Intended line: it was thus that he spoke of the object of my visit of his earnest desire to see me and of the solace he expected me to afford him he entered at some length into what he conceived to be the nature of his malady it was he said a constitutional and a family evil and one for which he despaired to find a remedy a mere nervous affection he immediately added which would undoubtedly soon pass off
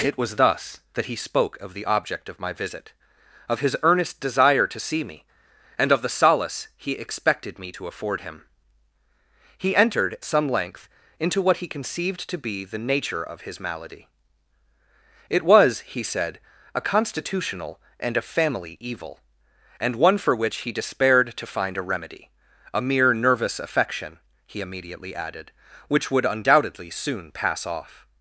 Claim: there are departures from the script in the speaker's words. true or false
true